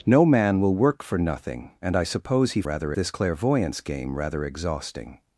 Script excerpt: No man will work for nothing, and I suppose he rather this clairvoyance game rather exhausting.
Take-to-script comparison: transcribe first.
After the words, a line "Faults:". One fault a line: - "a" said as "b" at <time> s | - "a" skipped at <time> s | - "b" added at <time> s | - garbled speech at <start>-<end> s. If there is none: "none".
No man will work for nothing, and I suppose he rather this clairvoyance game rather exhausting.
Faults:
none